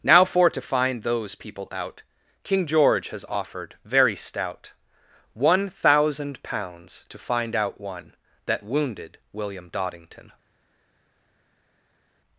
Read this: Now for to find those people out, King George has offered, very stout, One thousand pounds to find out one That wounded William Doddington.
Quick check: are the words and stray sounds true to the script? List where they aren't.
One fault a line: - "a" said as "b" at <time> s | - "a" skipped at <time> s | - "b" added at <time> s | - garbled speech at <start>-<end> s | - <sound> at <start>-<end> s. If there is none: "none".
none